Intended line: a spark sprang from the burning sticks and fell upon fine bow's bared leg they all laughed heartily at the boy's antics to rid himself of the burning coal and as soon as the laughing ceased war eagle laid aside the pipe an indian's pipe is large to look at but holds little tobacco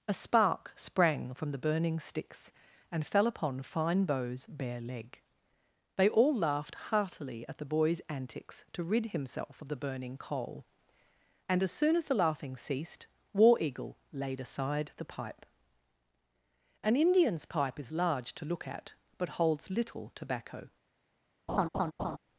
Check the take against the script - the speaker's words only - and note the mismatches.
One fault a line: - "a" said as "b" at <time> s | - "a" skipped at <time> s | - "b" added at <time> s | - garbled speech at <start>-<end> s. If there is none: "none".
- "bared" said as "bare" at 4.5 s